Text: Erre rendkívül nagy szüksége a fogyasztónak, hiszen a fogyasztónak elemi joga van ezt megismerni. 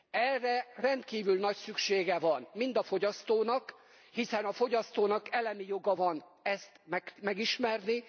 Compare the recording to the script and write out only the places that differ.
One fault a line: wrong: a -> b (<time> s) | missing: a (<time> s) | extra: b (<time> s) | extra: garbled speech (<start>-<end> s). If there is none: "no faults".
extra: van mind (2.2 s)